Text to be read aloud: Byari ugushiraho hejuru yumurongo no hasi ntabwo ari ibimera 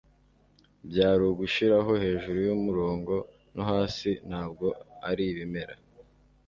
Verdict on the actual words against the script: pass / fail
pass